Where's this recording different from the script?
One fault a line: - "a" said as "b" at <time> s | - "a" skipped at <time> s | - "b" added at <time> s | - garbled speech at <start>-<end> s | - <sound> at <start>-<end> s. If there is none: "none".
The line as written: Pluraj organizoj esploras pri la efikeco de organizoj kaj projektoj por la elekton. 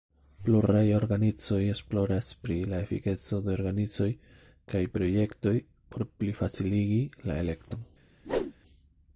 - "plifaciligi" added at 6.2 s
- whoosh at 8.2-8.5 s